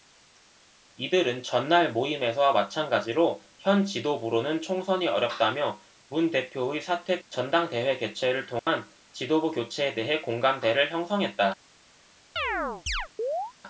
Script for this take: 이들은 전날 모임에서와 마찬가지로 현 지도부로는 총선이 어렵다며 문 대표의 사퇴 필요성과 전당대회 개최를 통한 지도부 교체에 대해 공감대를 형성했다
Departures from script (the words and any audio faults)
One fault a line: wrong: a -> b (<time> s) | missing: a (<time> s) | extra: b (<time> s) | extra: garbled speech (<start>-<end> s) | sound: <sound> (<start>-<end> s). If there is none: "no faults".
missing: 필요성과 (7.2 s)
sound: dropout (8.6-8.7 s)
sound: chirp (12.4-13.5 s)